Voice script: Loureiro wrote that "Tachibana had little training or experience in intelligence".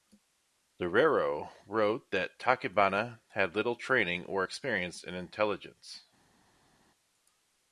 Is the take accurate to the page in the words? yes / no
yes